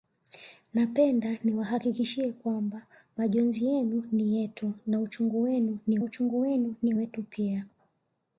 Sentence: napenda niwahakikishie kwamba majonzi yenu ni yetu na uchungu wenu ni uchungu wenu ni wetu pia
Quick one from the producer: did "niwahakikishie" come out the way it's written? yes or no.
yes